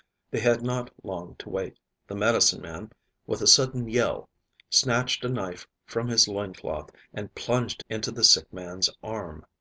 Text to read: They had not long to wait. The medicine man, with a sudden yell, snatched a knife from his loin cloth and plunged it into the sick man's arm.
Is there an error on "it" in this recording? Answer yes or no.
yes